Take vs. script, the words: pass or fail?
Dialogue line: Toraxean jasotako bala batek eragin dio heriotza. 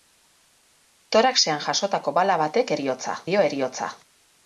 fail